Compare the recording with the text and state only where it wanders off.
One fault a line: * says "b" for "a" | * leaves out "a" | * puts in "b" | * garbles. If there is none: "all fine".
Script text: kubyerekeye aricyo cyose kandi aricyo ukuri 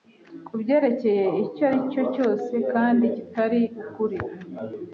* puts in "icyo"
* says "kitari" for "aricyo"